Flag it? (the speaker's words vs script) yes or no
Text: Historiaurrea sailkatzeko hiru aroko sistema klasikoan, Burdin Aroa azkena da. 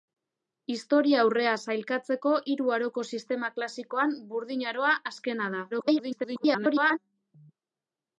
yes